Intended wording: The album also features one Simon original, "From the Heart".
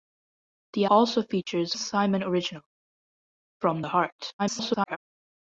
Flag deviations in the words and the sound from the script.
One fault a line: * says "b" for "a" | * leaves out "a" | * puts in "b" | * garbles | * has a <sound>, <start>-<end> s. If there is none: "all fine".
* leaves out "album"
* leaves out "one"
* garbles